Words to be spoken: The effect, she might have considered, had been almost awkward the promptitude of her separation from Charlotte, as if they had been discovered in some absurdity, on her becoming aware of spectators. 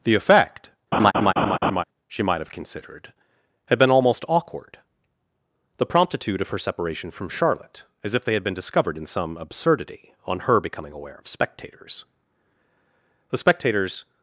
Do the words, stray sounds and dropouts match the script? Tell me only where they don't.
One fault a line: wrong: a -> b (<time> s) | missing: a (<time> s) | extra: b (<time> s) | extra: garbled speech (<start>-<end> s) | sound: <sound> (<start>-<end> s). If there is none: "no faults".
sound: laugh (0.9-1.8 s)
extra: The spectators (13.3 s)